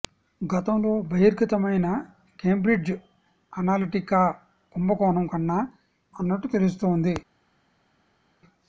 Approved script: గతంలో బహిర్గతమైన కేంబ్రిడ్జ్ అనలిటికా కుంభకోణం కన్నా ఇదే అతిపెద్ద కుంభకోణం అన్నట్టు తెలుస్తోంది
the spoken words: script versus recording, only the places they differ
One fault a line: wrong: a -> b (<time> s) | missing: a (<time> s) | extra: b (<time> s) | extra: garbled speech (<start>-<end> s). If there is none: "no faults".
missing: ఇదే అతిపెద్ద కుంభకోణం (5.6 s)